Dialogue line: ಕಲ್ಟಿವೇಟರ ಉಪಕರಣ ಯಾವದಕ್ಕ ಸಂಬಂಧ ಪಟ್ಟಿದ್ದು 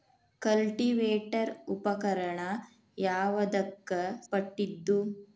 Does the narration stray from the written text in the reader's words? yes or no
yes